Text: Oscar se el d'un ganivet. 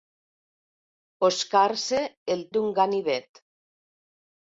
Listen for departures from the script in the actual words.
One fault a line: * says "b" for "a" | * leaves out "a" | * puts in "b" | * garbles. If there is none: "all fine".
all fine